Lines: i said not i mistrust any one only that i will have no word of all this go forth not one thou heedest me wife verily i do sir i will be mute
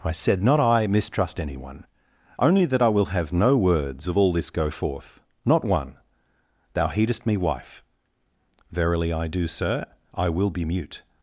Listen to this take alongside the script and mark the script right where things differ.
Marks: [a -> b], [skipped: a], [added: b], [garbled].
i said not i mistrust any one only that i will have no [word -> words] of all this go forth not one thou heedest me wife verily i do sir i will be mute